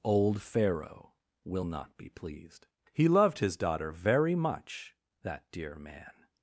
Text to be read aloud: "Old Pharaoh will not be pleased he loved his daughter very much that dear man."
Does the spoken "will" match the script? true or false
true